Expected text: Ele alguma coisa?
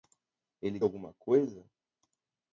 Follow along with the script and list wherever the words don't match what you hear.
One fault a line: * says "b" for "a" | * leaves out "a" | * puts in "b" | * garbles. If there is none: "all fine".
all fine